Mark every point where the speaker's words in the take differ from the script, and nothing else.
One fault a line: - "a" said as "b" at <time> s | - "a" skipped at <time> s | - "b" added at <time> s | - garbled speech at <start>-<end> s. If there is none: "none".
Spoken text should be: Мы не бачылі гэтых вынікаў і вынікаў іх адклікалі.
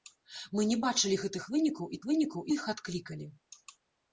none